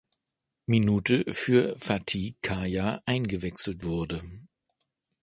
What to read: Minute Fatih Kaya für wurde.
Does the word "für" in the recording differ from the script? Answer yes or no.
yes